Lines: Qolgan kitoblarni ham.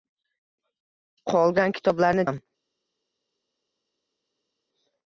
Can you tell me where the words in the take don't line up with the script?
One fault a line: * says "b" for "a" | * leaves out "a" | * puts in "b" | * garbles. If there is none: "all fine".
all fine